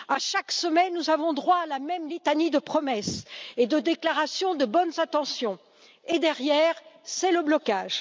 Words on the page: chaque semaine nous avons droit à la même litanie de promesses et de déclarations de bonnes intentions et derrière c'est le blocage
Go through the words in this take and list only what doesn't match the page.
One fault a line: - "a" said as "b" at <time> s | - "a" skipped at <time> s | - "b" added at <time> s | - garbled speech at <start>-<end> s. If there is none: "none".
none